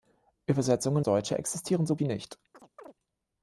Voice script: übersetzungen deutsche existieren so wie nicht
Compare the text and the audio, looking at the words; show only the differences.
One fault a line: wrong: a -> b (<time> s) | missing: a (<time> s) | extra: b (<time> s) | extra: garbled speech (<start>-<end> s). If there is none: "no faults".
no faults